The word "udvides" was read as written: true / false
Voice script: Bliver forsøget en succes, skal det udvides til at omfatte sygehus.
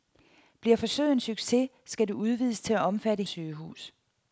true